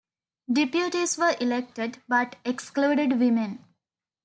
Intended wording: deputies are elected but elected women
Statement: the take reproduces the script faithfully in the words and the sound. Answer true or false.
false